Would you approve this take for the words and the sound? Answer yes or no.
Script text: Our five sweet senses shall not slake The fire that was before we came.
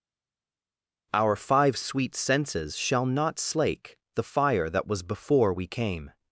yes